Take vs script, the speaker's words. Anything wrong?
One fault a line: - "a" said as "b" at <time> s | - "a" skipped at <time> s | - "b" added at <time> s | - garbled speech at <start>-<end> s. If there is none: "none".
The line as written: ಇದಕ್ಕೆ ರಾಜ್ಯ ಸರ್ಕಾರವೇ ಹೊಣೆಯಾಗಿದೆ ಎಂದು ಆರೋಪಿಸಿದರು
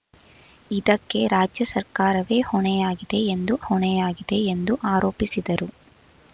- "ಹೊಣೆಯಾಗಿದೆ ಎಂದು" added at 3.7 s